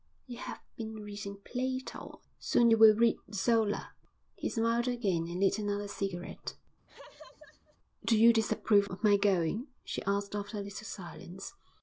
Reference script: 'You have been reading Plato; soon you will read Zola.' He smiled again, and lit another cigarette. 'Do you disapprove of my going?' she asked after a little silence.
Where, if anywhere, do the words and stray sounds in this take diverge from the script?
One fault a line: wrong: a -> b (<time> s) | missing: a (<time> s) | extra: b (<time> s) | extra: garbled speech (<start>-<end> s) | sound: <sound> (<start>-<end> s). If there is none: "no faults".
sound: laugh (6.9-7.8 s)